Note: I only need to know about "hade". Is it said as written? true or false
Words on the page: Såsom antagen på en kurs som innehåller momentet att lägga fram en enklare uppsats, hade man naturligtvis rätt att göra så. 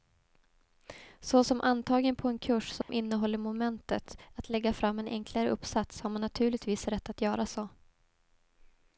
false